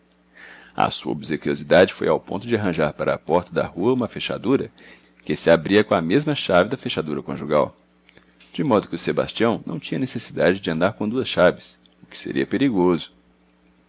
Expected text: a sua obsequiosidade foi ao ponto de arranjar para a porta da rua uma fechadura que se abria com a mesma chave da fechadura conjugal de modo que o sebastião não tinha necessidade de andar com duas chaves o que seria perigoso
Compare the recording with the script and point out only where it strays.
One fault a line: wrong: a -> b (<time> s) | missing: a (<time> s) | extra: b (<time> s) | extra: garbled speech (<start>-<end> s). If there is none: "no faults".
no faults